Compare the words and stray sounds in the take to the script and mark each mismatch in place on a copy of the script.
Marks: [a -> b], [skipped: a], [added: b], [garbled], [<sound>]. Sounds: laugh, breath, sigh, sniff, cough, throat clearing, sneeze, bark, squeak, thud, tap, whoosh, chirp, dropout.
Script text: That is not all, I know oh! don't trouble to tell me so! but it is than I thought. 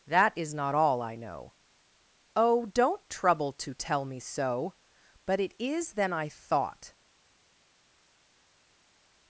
That is not all, I know oh! don't trouble to tell me so! but it is than I thought.